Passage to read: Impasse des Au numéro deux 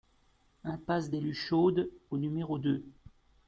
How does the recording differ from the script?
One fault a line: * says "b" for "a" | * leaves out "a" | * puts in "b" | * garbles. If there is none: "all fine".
* puts in "Luchaudes"